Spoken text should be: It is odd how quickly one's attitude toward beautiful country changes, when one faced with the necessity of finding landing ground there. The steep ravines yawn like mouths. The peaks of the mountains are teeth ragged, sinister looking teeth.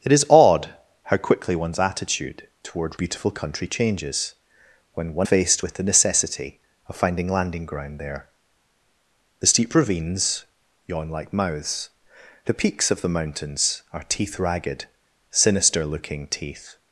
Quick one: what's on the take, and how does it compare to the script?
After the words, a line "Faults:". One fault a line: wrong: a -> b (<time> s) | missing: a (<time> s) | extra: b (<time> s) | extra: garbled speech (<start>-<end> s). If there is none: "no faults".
It is odd how quickly one's attitude toward beautiful country changes, when one faced with the necessity of finding landing ground there. The steep ravines yawn like mouths. The peaks of the mountains are teeth ragged, sinister looking teeth.
Faults:
no faults